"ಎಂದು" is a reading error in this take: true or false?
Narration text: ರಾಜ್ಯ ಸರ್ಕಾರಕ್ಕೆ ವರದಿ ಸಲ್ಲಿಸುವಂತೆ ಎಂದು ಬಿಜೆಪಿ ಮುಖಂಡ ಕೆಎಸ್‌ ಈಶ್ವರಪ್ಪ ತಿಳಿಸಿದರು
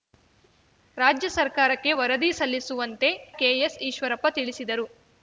true